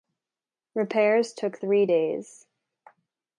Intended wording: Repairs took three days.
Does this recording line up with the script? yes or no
yes